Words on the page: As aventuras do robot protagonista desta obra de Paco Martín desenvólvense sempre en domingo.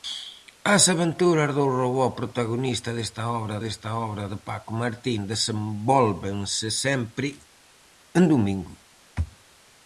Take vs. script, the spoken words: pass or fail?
fail